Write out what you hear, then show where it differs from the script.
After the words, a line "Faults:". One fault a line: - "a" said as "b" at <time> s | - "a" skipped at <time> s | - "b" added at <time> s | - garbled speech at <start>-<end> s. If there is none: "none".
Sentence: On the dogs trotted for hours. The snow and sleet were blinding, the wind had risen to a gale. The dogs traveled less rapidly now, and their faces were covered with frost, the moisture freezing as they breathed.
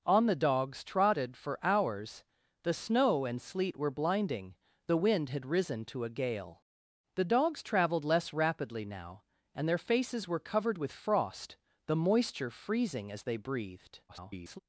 On the dogs trotted for hours. The snow and sleet were blinding, the wind had risen to a gale. The dogs traveled less rapidly now, and their faces were covered with frost, the moisture freezing as they breathed. [garbled]
Faults:
- garbled speech at 14.1-14.6 s